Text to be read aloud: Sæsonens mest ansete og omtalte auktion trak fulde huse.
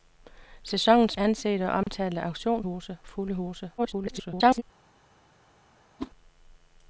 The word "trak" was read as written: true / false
false